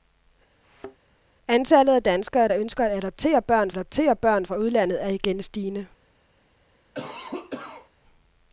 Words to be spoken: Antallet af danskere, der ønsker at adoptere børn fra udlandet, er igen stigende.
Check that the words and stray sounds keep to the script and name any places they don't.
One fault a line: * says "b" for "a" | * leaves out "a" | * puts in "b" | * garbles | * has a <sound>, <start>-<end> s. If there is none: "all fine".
* has a thud, 0.6-1.0 s
* puts in "adoptere børn"
* has a cough, 6.9-7.9 s